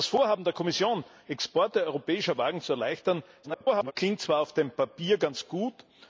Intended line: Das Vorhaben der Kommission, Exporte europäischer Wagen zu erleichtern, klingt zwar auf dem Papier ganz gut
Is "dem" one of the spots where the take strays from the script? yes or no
no